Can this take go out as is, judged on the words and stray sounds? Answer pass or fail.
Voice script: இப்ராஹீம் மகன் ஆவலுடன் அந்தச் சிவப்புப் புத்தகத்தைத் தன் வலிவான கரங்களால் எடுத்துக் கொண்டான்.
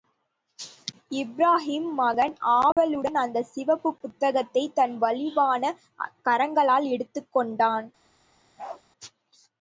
fail